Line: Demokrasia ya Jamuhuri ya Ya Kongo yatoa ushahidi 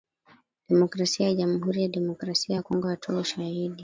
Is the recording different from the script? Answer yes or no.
yes